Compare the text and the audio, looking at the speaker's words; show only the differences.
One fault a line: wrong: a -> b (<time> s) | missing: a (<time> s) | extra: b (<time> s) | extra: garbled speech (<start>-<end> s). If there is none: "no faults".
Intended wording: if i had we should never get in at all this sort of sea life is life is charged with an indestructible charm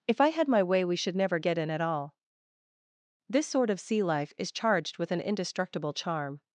extra: my way (0.5 s)
missing: life is (4.5 s)